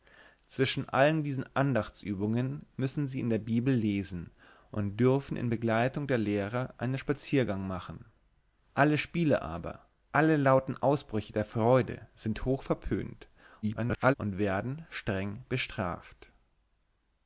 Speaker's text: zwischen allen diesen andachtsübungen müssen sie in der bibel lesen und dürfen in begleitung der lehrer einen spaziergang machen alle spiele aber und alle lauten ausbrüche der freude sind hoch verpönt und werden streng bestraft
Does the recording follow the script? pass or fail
fail